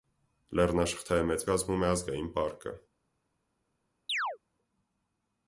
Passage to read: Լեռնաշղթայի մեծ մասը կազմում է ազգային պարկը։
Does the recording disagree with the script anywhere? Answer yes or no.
yes